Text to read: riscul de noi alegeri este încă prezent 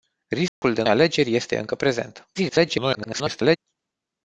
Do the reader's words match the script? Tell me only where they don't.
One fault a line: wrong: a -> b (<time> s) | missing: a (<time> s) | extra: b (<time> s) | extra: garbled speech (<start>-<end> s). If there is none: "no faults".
missing: noi (0.8 s)
extra: garbled speech (2.3-3.6 s)